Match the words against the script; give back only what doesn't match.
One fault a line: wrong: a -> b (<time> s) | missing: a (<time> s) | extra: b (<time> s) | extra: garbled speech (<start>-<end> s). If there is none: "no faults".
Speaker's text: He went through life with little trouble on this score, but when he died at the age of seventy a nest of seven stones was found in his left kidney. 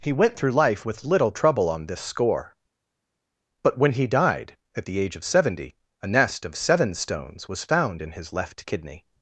no faults